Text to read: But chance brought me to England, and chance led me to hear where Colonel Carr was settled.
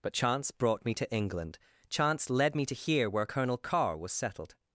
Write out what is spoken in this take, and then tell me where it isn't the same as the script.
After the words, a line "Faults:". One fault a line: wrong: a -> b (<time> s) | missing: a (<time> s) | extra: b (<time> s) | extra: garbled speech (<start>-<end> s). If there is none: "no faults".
But chance brought me to England, chance led me to hear where Colonel Carr was settled.
Faults:
missing: and (1.6 s)